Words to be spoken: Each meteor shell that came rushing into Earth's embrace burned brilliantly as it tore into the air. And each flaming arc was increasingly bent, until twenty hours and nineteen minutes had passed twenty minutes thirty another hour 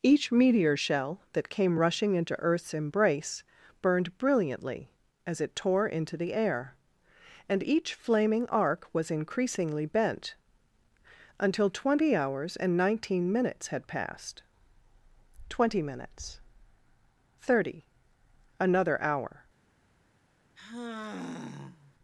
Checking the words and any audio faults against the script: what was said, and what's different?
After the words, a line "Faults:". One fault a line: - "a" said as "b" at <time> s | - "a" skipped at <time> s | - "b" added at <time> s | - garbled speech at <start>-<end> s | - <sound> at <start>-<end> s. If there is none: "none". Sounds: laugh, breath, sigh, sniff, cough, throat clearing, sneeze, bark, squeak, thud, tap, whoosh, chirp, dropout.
Each meteor shell that came rushing into Earth's embrace burned brilliantly as it tore into the air. And each flaming arc was increasingly bent, until twenty hours and nineteen minutes had passed twenty minutes thirty another hour
Faults:
- sigh at 20.6-21.9 s